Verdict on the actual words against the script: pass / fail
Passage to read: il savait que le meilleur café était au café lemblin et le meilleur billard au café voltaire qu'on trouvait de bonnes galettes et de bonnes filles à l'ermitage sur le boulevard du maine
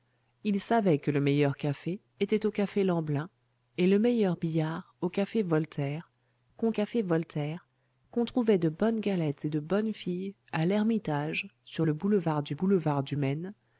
fail